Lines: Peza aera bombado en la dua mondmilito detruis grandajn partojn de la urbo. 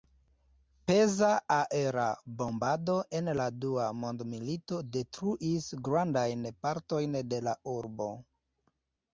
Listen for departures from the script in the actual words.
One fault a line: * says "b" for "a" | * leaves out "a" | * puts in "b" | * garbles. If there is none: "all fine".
all fine